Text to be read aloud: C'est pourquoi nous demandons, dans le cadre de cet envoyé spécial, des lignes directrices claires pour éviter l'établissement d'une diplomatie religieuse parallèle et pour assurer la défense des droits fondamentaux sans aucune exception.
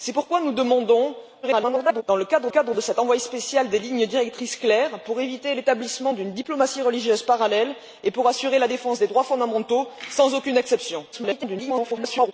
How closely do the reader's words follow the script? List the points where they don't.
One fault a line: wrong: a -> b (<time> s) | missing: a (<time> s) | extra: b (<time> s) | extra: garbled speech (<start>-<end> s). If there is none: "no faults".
extra: garbled speech (1.4-2.0 s)
extra: cadre (2.5 s)
extra: garbled speech (11.1-12.3 s)